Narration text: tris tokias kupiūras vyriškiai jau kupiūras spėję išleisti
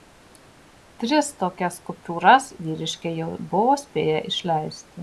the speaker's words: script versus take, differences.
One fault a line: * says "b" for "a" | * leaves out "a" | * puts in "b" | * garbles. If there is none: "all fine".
* says "buvo" for "kupiūras"